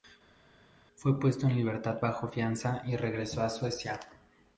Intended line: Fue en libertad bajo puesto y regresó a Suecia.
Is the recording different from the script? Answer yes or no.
yes